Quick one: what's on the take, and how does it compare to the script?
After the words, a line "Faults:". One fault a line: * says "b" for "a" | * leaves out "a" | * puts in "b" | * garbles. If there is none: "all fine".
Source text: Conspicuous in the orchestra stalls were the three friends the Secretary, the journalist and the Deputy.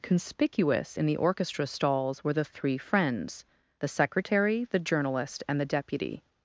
Conspicuous in the orchestra stalls were the three friends the Secretary, the journalist and the Deputy.
Faults:
all fine